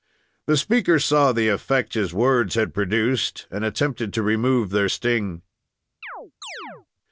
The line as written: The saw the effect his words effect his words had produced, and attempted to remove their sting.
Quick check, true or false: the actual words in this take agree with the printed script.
false